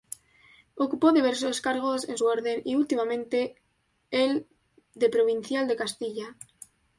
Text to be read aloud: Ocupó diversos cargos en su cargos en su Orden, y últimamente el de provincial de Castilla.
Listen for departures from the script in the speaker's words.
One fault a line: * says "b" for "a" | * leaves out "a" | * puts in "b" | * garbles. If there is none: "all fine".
* leaves out "cargos en su"